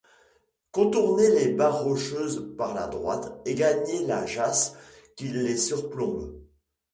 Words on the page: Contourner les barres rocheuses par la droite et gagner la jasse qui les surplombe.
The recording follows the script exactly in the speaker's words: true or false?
true